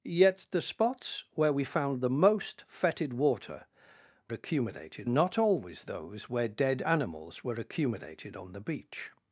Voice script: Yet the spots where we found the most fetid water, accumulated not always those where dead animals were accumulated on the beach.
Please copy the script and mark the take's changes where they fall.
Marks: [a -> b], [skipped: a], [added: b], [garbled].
Yet the spots where we found the most fetid water, accumulated not always those where dead animals were accumulated on the beach.